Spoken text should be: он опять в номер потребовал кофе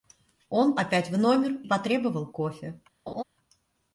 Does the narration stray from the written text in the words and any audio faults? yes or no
yes